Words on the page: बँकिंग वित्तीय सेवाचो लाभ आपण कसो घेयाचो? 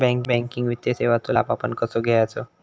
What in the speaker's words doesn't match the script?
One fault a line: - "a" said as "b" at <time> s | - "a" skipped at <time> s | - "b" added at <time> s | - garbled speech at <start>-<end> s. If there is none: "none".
none